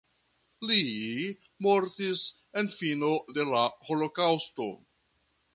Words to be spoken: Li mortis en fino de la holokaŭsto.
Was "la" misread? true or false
false